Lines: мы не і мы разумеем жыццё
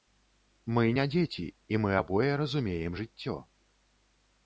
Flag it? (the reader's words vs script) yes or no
yes